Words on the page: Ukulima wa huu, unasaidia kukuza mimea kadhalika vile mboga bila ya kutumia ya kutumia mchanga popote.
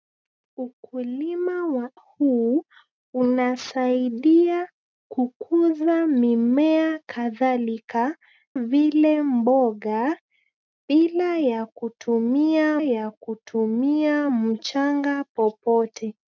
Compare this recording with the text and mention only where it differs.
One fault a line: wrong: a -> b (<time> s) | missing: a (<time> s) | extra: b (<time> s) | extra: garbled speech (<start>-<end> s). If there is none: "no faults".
no faults